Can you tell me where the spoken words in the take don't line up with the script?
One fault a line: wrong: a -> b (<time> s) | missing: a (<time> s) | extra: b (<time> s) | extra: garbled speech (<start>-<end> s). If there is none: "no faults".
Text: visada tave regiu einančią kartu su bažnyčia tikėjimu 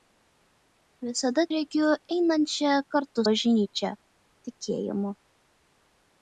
missing: tave (1.4 s)
missing: su (3.2 s)